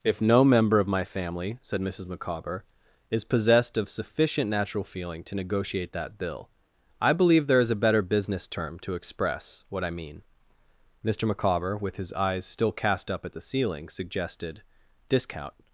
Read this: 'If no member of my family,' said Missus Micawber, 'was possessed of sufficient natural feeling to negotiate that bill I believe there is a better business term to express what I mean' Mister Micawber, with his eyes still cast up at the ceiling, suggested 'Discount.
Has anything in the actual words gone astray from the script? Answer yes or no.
yes